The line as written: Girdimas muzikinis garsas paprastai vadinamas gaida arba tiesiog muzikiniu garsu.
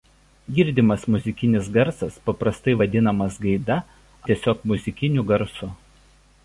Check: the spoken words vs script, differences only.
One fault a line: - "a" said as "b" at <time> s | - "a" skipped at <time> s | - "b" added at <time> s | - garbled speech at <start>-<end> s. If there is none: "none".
- "arba" skipped at 3.8 s